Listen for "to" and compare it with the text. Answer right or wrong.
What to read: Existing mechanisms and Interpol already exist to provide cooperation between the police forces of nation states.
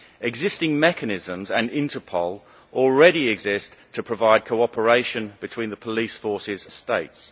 right